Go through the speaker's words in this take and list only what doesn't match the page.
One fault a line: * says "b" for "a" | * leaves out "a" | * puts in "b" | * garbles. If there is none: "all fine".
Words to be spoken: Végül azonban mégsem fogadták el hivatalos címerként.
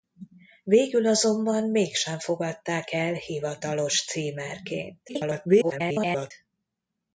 * garbles